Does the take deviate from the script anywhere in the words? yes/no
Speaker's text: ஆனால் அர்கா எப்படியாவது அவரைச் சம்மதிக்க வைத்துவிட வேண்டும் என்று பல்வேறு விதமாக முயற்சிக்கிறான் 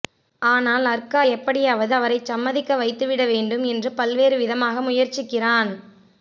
no